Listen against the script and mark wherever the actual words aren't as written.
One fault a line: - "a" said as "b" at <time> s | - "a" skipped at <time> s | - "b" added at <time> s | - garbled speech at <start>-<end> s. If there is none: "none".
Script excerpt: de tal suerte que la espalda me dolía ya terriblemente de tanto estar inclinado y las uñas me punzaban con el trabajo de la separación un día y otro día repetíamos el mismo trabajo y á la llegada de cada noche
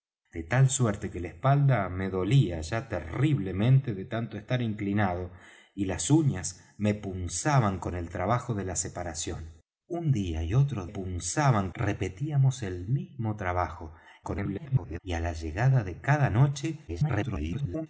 - "día" said as "punzaban" at 10.8 s
- garbled speech at 14.2-15.0 s
- garbled speech at 16.9-17.9 s